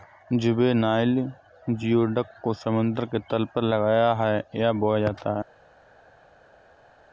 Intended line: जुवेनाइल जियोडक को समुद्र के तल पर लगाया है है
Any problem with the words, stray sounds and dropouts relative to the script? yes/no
yes